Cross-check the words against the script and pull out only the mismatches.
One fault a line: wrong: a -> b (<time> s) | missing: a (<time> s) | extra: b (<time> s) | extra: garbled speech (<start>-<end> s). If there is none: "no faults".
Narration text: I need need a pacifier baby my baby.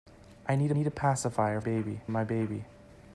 no faults